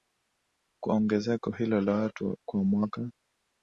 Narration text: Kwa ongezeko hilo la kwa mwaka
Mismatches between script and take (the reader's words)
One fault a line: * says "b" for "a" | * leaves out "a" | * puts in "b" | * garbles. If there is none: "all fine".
* puts in "watu"